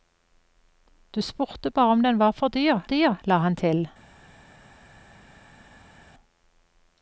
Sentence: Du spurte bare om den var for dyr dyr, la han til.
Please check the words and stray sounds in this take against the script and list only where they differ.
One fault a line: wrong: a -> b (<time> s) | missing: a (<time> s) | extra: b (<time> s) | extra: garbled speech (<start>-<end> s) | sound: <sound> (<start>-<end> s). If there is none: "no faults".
no faults